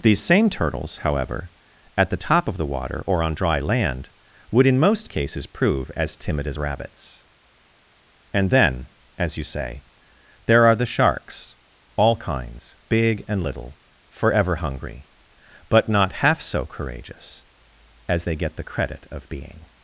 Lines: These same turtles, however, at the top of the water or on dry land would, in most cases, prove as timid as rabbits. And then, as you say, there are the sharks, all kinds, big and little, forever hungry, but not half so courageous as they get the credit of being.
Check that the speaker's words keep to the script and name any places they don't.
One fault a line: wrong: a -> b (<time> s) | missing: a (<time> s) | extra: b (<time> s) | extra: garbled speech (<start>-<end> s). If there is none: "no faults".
no faults